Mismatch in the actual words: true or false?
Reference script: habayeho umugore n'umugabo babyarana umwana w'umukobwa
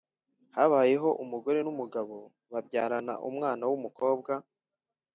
false